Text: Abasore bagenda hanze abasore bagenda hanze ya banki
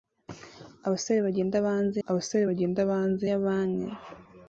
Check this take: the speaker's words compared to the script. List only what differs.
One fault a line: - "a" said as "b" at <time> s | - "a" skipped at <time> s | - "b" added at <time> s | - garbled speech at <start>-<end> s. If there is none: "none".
none